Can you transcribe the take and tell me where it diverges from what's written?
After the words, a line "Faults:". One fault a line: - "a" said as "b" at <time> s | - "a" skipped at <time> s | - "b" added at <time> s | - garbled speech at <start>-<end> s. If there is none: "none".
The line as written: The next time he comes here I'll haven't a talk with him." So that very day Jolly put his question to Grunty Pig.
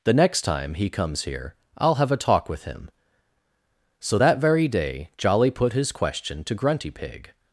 The next time he comes here I'll have a talk with him." So that very day Jolly put his question to Grunty Pig.
Faults:
- "haven't" said as "have" at 1.9 s